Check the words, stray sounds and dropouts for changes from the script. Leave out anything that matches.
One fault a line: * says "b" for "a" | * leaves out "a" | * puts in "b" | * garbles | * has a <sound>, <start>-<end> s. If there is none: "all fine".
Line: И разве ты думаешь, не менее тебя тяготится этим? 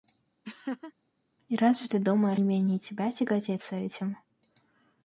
* has a laugh, 0.4-0.9 s